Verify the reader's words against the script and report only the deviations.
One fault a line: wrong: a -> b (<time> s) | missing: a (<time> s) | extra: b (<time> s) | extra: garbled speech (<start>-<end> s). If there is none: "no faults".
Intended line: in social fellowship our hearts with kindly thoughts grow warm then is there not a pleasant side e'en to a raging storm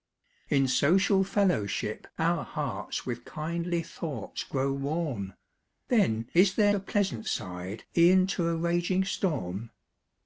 missing: not (6.7 s)